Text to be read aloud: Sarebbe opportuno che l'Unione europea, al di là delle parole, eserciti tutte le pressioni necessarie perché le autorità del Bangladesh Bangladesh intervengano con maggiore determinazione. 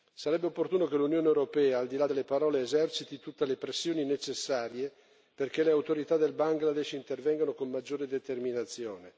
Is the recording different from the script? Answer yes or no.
yes